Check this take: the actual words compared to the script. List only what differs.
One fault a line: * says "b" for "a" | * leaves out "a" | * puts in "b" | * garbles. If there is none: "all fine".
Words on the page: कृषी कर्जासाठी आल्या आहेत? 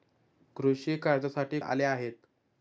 all fine